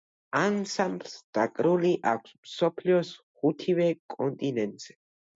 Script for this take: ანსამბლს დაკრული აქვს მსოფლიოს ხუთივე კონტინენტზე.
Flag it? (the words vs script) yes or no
no